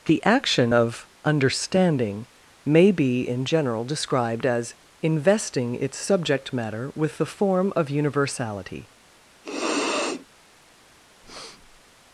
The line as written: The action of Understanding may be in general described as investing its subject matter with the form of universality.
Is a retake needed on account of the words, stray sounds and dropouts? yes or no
yes